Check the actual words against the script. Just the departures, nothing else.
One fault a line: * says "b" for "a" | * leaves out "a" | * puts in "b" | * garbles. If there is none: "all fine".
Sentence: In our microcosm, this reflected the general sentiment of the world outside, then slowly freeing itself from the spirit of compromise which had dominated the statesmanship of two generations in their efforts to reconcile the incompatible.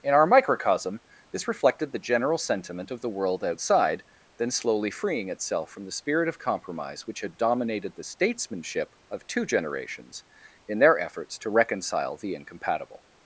all fine